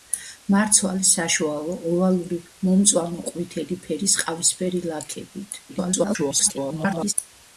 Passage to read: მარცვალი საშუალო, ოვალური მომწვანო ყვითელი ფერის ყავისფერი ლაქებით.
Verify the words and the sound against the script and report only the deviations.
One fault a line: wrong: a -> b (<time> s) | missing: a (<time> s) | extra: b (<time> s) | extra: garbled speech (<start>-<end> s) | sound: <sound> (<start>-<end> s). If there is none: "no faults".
extra: garbled speech (5.7-7.1 s)